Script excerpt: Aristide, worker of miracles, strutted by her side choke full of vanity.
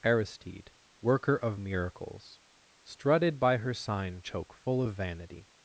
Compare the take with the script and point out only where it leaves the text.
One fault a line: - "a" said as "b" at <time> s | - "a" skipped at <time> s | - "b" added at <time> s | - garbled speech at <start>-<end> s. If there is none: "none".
- "side" said as "sign" at 3.7 s